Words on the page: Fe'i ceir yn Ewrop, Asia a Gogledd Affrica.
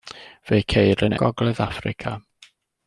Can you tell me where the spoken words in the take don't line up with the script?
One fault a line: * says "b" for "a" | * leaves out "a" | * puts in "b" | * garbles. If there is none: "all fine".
* leaves out "Ewrop Asia a"